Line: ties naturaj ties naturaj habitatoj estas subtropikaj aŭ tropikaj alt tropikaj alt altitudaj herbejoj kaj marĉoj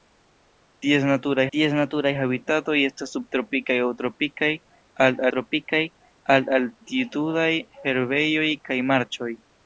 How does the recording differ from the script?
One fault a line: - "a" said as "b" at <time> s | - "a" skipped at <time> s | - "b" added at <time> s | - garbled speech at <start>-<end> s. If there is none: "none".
none